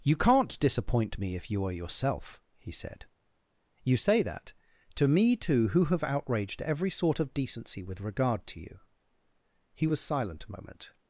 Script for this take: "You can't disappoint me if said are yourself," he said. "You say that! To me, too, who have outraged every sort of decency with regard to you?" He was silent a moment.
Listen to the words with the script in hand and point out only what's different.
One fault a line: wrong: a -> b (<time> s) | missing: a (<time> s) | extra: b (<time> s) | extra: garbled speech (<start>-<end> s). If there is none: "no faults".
wrong: said -> you (1.5 s)